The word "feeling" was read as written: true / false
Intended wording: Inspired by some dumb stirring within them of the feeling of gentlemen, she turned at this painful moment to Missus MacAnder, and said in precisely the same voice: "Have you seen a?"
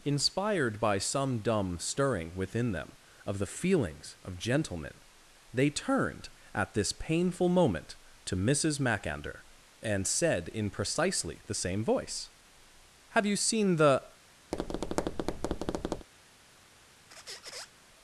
false